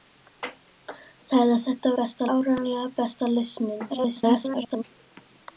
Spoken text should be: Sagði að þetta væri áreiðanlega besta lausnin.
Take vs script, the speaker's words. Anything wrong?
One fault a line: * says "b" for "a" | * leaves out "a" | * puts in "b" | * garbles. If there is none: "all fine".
* says "besta" for "væri"
* garbles